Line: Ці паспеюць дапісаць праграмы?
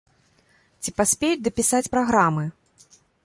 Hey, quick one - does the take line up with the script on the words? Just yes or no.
yes